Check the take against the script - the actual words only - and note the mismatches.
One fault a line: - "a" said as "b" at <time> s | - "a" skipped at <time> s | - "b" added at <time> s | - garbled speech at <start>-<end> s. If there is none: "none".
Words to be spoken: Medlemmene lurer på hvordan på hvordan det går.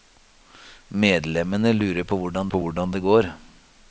none